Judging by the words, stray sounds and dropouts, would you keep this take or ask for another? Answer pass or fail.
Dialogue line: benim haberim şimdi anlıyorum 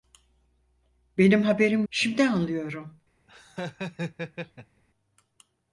fail